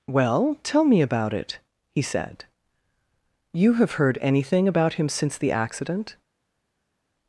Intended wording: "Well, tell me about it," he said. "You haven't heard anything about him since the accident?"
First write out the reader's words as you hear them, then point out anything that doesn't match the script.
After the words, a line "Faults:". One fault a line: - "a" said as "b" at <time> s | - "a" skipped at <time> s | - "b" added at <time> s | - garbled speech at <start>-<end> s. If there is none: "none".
"Well, tell me about it," he said. "You have heard anything about him since the accident?"
Faults:
- "haven't" said as "have" at 3.7 s